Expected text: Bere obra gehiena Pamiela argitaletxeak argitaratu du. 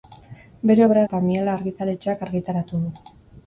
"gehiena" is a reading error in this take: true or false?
true